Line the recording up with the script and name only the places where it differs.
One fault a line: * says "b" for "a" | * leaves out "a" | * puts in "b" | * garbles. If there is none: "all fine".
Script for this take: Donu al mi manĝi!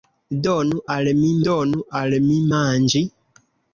* puts in "donu al mi"